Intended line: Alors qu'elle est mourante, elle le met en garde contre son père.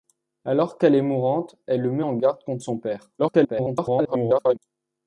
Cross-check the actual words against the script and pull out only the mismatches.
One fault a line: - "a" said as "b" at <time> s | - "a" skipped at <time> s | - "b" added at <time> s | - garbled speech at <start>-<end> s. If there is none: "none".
- garbled speech at 3.2-4.6 s